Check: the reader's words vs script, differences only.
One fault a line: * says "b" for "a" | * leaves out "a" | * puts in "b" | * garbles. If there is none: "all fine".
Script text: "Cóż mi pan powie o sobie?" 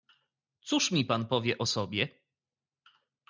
all fine